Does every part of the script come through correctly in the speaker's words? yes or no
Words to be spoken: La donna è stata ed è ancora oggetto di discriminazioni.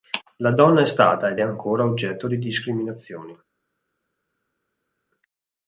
yes